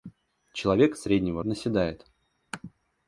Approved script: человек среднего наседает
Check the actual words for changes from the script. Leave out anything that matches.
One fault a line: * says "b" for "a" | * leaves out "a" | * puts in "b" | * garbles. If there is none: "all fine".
all fine